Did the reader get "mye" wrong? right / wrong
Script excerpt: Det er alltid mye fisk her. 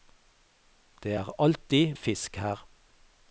wrong